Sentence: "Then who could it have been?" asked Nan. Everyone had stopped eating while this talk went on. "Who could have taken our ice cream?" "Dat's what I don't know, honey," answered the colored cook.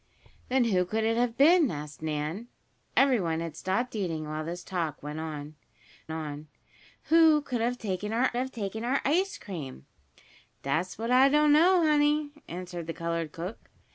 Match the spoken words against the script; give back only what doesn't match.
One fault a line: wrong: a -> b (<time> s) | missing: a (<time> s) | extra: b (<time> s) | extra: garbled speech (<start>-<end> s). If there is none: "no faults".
extra: on (6.1 s)
extra: have taken our (8.4 s)